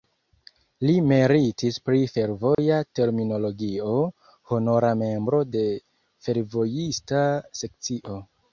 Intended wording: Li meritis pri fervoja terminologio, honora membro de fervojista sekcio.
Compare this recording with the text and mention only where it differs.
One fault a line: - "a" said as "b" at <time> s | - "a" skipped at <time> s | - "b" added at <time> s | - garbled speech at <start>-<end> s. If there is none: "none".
none